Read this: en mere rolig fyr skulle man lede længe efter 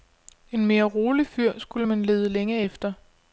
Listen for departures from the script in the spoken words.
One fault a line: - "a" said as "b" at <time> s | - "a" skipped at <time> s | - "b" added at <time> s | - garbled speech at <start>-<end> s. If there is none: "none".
none